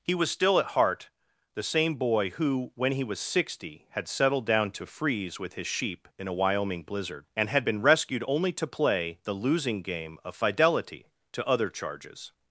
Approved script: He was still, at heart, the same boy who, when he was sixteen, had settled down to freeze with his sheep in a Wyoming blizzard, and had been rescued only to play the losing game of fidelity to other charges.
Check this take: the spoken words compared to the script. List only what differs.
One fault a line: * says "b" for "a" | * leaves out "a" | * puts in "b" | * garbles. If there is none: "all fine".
* says "sixty" for "sixteen"